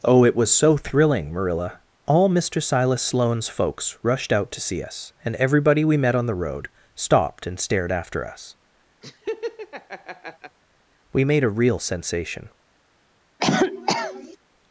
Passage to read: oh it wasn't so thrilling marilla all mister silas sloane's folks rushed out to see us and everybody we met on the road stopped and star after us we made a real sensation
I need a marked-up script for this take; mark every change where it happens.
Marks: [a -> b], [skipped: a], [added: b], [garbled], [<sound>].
oh it [wasn't -> was] so thrilling marilla all mister silas sloane's folks rushed out to see us and everybody we met on the road stopped and [star -> stared] after us [laugh] we made a real sensation [cough]